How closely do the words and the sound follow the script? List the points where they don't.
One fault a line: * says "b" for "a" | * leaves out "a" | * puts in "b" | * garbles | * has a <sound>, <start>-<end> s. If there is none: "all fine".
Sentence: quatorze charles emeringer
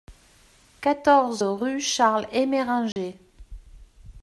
* puts in "rue"
* has a dropout, 2.9-3.0 s